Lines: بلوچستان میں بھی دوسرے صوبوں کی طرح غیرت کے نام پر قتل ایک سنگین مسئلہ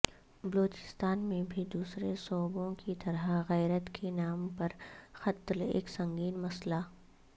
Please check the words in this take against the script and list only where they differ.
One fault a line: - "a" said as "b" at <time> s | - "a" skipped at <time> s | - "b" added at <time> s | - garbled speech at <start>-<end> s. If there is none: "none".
none